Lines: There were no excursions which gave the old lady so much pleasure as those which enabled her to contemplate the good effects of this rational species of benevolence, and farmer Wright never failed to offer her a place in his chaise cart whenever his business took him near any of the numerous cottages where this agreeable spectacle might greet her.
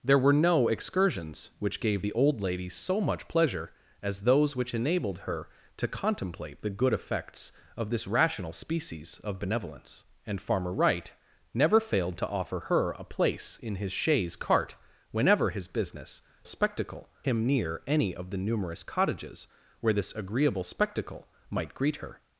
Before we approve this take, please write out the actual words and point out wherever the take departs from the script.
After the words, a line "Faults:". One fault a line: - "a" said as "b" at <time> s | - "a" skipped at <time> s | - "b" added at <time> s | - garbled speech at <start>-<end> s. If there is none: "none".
There were no excursions which gave the old lady so much pleasure as those which enabled her to contemplate the good effects of this rational species of benevolence, and farmer Wright never failed to offer her a place in his chaise cart whenever his business spectacle him near any of the numerous cottages where this agreeable spectacle might greet her.
Faults:
- "took" said as "spectacle" at 16.5 s